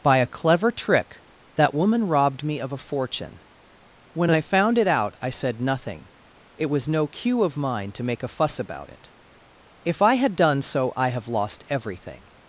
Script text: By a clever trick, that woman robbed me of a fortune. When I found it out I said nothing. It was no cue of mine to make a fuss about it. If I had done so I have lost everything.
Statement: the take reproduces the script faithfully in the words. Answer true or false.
true